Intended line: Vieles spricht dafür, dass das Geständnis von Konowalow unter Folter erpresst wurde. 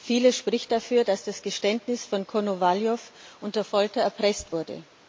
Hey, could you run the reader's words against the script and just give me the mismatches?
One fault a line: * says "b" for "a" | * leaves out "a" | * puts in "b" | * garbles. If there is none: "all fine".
all fine